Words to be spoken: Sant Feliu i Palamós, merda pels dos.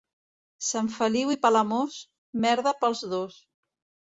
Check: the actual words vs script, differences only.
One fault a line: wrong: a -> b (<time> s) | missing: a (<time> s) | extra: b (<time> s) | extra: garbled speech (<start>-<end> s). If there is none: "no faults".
no faults